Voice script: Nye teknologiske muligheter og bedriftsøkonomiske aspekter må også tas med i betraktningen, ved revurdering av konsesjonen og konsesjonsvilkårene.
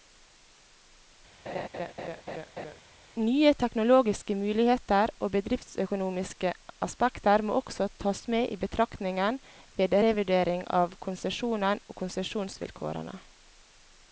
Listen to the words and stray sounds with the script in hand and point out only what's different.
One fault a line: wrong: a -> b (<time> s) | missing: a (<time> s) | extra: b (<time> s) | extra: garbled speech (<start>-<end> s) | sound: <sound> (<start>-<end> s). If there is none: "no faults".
sound: laugh (1.5-2.8 s)